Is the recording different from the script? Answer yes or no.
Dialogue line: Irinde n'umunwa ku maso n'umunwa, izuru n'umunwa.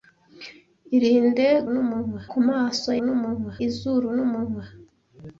no